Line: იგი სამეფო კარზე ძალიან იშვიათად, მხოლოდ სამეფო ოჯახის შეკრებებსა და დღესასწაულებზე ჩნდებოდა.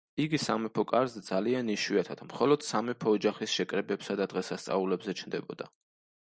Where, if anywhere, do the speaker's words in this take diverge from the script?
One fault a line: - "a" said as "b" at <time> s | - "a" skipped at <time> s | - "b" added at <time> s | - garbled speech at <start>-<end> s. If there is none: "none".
none